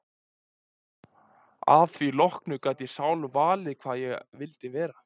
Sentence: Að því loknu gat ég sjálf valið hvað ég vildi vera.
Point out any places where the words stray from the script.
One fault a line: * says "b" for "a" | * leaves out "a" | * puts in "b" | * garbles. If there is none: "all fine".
all fine